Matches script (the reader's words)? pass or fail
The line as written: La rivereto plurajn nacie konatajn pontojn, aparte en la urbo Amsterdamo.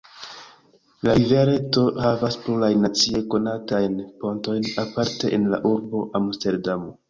fail